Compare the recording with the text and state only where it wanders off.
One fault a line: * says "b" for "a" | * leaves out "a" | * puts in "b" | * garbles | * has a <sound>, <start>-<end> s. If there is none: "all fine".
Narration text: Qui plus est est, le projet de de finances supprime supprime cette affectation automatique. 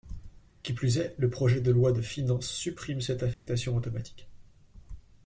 * leaves out "est"
* puts in "loi"
* leaves out "supprime"
* has a dropout, 3.3-3.5 s